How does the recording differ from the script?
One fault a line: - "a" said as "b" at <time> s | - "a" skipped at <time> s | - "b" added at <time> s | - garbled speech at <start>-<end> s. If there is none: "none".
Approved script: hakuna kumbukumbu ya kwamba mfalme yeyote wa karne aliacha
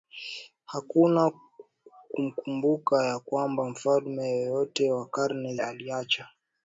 none